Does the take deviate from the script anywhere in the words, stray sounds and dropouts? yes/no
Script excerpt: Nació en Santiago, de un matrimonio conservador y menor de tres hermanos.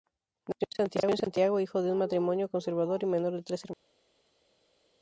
yes